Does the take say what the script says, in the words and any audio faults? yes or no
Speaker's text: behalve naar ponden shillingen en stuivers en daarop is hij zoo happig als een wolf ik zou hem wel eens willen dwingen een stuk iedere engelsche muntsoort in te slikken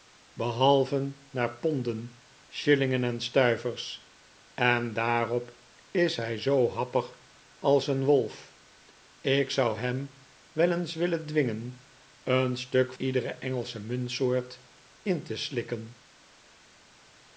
yes